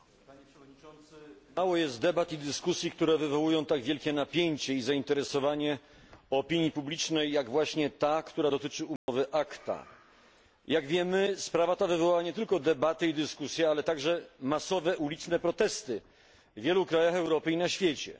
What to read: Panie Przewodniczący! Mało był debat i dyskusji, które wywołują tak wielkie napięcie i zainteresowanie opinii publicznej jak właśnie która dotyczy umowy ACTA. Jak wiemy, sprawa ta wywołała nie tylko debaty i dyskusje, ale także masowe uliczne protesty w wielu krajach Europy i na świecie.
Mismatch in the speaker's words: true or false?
true